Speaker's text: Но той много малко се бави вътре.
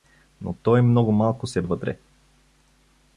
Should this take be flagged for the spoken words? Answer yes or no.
yes